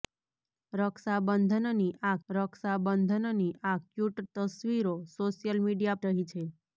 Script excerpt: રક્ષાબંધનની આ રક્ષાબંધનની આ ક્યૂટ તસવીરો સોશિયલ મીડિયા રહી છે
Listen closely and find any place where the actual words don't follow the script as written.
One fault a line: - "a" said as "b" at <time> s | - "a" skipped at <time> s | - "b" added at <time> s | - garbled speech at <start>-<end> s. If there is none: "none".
none